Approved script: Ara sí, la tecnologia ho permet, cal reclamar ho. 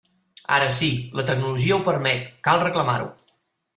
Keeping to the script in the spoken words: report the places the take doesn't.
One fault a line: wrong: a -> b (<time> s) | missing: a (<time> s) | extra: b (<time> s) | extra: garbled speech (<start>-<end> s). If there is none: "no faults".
no faults